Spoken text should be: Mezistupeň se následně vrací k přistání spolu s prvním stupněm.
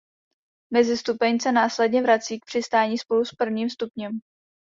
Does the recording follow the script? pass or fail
pass